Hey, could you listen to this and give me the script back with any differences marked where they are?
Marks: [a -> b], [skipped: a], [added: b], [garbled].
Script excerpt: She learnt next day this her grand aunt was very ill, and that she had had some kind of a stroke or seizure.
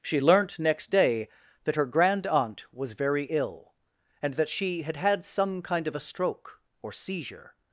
She learnt next day [this -> that] her grand aunt was very ill, and that she had had some kind of a stroke or seizure.